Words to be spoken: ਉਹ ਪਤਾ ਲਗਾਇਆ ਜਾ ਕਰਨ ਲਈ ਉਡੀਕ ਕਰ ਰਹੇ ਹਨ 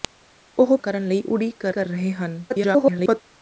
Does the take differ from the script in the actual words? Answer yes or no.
yes